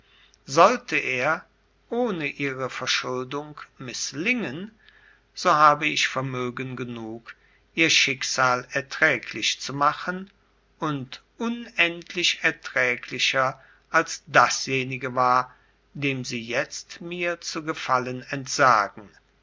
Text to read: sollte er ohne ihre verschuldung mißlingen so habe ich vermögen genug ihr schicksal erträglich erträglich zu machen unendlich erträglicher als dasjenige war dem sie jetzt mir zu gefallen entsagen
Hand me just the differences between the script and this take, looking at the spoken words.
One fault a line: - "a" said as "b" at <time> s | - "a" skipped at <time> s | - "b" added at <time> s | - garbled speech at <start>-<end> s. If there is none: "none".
- "erträglich" skipped at 9.6 s
- "und" added at 10.8 s